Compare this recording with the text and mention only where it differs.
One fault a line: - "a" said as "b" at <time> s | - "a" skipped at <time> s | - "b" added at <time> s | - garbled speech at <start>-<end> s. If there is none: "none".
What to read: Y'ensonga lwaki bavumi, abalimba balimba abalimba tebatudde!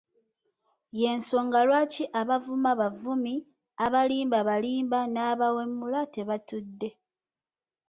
- "abavuma" added at 2.2 s
- "abalimba" said as "n'abawemula" at 5.1 s